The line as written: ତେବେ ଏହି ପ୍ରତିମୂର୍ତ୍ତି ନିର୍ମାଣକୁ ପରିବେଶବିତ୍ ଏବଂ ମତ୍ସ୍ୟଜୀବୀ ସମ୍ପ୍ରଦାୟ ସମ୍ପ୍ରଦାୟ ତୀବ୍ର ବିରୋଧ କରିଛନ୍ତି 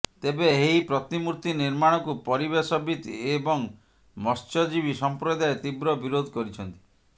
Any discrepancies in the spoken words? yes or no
yes